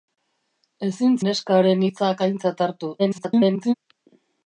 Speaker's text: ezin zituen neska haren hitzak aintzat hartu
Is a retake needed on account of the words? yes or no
yes